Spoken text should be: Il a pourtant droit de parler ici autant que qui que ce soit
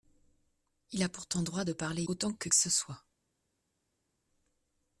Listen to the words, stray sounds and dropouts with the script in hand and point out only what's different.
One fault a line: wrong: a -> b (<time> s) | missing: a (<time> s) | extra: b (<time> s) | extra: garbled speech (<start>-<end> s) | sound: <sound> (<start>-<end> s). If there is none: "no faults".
missing: ici (2.0 s)
missing: qui (2.5 s)